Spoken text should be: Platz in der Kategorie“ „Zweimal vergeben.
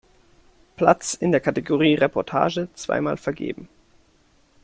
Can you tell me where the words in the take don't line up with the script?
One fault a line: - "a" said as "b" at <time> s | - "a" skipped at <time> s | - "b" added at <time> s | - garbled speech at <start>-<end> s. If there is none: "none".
- "Reportage" added at 1.9 s